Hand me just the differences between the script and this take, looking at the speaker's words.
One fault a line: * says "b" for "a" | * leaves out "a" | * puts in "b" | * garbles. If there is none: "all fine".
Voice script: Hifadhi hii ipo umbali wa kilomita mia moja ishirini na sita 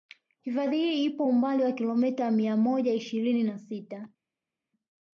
all fine